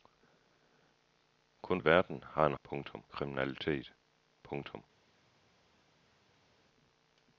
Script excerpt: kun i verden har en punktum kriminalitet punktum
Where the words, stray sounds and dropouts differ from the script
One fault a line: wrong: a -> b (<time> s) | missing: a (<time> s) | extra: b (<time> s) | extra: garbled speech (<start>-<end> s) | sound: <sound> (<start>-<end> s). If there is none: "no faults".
no faults